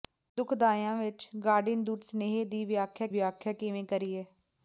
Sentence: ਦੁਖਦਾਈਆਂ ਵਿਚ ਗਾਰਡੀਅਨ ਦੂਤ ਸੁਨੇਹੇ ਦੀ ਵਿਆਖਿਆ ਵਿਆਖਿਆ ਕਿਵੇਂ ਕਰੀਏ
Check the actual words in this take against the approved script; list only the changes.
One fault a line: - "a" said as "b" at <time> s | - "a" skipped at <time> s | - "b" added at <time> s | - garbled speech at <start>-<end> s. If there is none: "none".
none